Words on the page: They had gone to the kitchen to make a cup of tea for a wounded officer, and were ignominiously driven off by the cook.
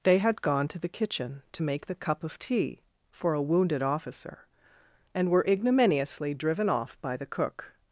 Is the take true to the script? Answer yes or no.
no